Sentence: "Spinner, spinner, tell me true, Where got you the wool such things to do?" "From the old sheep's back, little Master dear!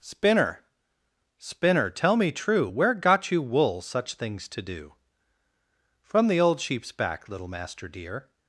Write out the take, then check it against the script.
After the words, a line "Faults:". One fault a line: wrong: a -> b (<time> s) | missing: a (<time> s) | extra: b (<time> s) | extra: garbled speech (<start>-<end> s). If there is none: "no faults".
"Spinner, spinner, tell me true, Where got you wool such things to do?" "From the old sheep's back, little Master dear!
Faults:
missing: the (3.4 s)